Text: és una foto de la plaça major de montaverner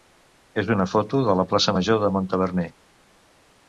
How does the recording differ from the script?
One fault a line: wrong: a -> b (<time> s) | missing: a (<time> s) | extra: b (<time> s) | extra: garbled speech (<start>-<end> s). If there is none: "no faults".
no faults